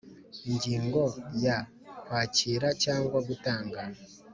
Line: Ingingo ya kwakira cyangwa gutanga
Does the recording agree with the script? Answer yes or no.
yes